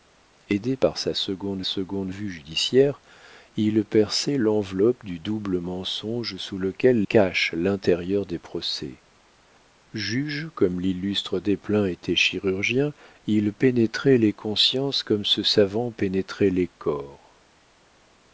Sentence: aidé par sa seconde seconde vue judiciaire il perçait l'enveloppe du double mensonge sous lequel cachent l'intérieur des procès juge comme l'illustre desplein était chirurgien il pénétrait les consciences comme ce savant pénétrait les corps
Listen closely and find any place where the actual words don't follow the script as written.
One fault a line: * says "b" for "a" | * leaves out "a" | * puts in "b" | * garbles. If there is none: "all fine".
all fine